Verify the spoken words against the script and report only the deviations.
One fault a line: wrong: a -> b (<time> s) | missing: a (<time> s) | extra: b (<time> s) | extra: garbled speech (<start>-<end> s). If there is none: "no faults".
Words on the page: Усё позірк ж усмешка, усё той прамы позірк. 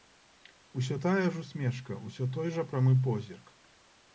wrong: позірк -> тая (1.1 s)
extra: жа (2.6 s)